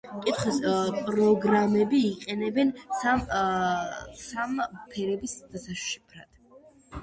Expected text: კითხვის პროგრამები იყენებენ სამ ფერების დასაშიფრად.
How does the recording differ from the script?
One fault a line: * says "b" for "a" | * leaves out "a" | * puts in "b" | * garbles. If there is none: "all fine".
all fine